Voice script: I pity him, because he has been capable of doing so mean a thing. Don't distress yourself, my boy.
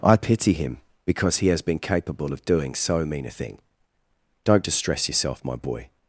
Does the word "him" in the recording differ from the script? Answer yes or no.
no